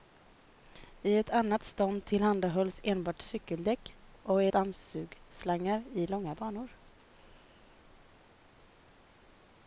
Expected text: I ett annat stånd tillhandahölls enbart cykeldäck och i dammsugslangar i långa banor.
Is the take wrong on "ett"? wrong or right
right